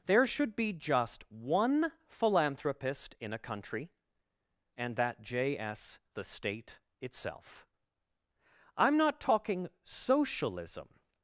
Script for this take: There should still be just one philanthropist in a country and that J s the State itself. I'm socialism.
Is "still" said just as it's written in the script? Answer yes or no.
no